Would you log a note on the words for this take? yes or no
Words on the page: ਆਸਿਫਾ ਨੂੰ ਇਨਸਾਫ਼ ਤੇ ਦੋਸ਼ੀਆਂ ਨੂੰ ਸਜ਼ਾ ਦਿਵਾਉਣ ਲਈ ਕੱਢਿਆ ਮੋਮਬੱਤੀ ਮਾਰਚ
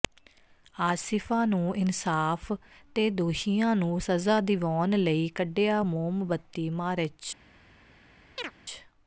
no